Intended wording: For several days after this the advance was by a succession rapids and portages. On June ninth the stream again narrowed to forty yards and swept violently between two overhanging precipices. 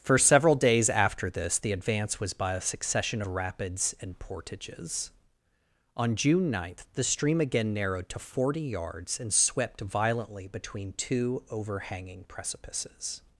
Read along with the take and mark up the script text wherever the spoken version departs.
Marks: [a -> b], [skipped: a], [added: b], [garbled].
For several days after this the advance was by a succession rapids and portages. On June ninth the stream again narrowed to forty yards and swept violently between two overhanging precipices.